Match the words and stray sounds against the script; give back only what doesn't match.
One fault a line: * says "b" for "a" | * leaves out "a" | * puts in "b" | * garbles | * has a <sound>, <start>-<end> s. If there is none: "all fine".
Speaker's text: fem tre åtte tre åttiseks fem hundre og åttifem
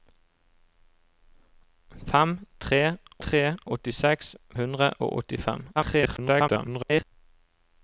* leaves out "åtte"
* leaves out "fem"
* garbles